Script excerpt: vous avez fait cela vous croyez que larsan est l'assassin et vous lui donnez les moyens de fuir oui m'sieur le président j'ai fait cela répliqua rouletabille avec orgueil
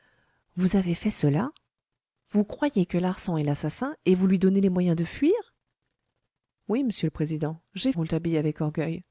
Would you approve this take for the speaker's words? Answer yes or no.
no